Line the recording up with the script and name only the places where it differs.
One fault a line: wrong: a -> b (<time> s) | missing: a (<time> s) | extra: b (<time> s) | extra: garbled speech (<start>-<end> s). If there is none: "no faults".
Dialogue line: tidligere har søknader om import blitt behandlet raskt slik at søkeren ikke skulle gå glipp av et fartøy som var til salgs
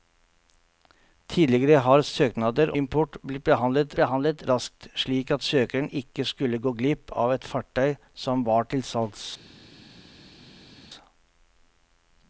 missing: om (2.7 s)
extra: behandlet (4.0 s)